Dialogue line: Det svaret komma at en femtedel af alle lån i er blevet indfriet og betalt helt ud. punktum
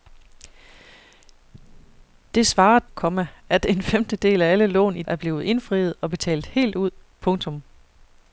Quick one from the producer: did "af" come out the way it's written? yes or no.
yes